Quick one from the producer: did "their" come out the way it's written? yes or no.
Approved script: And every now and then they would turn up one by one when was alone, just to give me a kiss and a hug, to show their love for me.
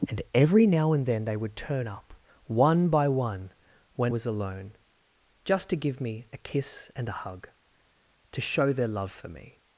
yes